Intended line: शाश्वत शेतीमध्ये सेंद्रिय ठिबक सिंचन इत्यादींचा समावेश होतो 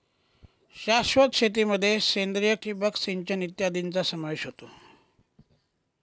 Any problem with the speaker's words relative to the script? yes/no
no